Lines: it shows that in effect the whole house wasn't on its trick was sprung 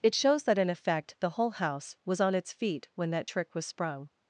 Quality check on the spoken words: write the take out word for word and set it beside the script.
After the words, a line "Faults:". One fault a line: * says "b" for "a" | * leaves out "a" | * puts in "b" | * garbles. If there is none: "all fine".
it shows that in effect the whole house was on its feet when that trick was sprung
Faults:
* says "was" for "wasn't"
* puts in "feet when that"